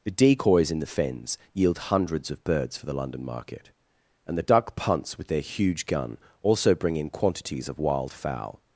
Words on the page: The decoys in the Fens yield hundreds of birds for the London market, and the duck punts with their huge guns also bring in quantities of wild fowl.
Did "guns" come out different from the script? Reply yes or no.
yes